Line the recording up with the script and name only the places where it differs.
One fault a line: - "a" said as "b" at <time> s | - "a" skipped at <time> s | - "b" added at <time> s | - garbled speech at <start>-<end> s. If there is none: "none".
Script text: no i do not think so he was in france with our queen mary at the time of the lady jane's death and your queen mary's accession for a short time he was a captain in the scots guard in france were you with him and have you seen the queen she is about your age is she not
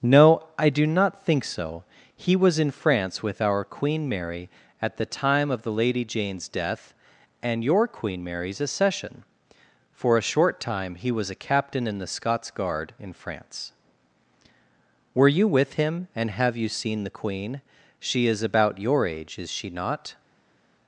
none